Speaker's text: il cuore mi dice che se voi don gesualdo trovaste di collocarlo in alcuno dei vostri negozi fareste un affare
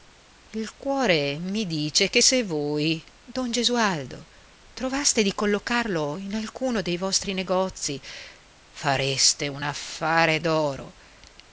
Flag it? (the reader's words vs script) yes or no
no